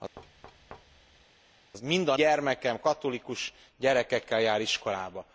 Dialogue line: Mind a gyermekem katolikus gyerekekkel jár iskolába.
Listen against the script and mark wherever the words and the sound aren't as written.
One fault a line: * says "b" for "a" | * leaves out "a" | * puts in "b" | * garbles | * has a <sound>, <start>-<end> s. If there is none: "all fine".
* has a thud, 0.2-1.3 s